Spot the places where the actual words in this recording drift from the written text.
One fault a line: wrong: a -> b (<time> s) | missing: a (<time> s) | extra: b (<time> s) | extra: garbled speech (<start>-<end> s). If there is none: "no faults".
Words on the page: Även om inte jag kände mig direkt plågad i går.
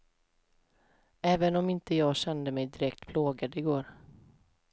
no faults